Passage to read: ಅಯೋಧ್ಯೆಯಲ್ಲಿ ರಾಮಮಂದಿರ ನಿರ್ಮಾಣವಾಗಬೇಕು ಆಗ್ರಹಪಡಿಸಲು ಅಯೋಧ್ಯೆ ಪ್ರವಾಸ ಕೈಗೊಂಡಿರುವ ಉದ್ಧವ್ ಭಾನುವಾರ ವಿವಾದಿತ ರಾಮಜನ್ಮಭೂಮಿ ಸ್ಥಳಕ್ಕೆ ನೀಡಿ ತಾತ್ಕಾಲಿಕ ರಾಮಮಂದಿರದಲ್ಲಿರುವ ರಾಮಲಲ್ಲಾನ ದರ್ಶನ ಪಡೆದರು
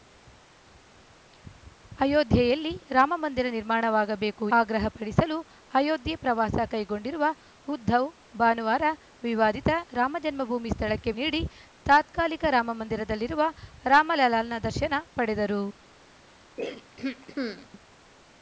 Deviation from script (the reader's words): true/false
false